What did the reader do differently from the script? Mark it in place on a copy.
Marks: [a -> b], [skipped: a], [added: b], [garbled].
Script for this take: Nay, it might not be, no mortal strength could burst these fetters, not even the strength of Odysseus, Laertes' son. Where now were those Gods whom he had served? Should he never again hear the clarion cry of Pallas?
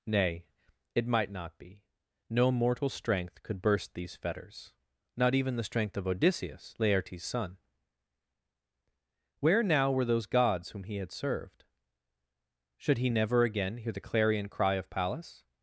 Nay, it might not be, no mortal strength could burst these fetters, not even the strength of Odysseus, Laertes' son. Where now were those Gods whom he had served? Should he never again hear the clarion cry of Pallas?